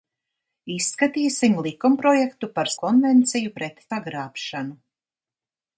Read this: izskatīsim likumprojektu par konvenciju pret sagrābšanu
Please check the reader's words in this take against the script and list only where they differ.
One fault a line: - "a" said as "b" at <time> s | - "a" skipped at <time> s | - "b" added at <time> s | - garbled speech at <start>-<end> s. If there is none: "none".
none